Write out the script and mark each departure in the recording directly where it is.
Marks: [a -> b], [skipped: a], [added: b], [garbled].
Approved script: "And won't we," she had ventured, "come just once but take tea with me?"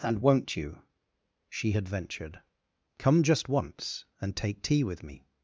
"And won't [we," -> you] she had ventured, "come just once [but -> and] take tea with me?"